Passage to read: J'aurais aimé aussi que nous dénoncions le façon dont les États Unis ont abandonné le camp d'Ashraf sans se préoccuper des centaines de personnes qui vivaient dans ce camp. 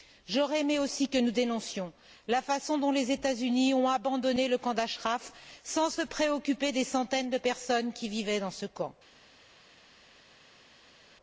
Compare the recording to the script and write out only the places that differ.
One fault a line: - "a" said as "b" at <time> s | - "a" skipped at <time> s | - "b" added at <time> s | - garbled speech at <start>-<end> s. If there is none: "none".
- "le" said as "la" at 2.3 s